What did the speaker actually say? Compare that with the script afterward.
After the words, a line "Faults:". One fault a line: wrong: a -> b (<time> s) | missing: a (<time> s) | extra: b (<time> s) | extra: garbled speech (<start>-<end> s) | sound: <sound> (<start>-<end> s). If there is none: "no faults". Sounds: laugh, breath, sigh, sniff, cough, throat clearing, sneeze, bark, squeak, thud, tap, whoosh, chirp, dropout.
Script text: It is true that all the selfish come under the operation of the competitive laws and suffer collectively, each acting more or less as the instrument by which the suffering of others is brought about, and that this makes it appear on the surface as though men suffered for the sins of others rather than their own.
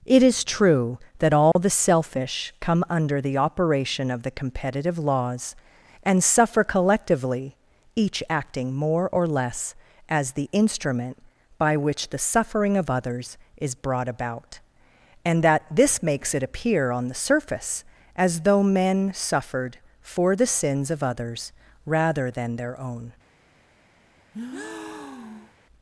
It is true that all the selfish come under the operation of the competitive laws and suffer collectively, each acting more or less as the instrument by which the suffering of others is brought about, and that this makes it appear on the surface as though men suffered for the sins of others rather than their own.
Faults:
sound: dropout (1.5-1.6 s)
sound: breath (24.3-25.6 s)